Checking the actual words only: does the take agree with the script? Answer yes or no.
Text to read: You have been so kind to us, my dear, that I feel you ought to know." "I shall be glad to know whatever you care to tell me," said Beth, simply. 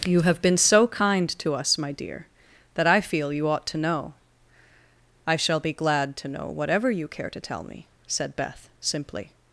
yes